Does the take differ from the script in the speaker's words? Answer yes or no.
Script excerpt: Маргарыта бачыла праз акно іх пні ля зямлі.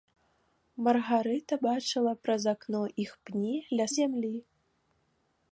no